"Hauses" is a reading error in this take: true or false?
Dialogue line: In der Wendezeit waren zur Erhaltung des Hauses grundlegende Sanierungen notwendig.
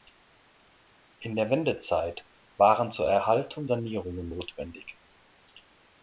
true